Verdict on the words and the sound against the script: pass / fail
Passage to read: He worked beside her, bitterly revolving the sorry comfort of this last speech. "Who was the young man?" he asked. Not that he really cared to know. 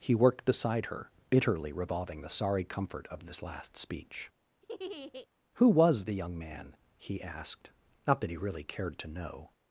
fail